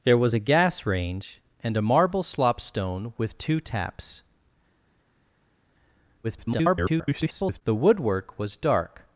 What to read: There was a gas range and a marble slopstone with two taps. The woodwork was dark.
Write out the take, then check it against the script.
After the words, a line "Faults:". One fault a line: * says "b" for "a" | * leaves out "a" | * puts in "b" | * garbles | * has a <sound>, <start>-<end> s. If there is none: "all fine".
There was a gas range and a marble slopstone with two taps. [garbled] The woodwork was dark.
Faults:
* garbles